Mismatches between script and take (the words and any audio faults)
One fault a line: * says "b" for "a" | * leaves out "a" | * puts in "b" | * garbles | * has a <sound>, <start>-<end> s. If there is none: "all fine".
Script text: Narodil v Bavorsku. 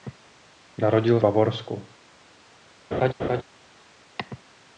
* has a laugh, 2.9-3.4 s